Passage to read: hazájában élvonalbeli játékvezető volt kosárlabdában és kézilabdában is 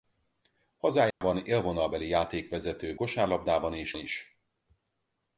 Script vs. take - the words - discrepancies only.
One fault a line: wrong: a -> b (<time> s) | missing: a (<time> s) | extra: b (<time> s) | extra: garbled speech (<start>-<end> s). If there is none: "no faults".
missing: volt (3.0 s)
missing: kézilabdában (3.9 s)